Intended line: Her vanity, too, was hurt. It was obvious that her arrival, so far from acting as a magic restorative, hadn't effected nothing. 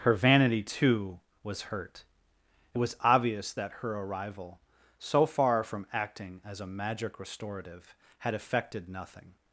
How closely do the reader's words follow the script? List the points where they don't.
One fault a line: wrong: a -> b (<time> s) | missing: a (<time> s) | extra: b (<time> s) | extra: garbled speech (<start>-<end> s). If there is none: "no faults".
wrong: hadn't -> had (8.2 s)